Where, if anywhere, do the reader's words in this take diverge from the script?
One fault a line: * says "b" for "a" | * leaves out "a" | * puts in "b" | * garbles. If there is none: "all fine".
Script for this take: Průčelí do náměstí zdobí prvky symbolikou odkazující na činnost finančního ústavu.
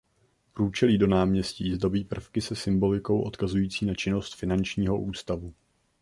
* puts in "se"